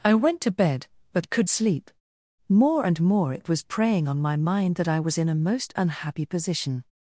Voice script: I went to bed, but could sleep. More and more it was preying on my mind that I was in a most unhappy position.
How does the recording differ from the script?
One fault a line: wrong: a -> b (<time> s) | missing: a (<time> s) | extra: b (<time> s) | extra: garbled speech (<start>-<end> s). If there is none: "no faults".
no faults